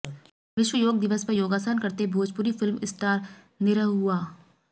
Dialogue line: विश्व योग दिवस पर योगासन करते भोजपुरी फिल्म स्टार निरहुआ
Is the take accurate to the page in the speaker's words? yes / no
yes